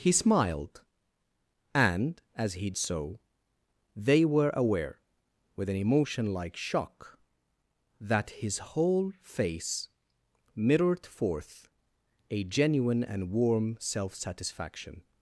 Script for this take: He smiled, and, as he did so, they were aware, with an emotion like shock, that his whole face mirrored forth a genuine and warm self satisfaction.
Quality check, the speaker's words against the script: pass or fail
fail